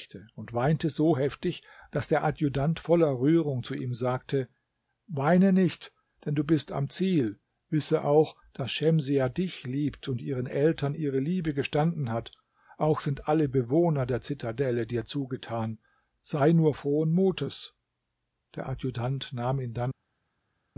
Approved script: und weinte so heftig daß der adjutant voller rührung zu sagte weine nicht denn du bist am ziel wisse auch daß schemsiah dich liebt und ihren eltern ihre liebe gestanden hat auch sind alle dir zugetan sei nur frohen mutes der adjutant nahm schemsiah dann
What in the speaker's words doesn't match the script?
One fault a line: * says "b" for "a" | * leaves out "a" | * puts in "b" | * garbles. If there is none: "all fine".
* puts in "ihm"
* puts in "bewohner der zitadelle"
* says "ihn" for "schemsiah"